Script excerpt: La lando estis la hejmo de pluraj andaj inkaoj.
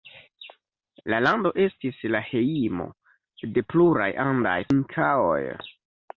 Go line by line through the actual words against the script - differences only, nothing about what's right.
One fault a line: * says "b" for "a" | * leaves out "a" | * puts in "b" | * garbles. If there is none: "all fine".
all fine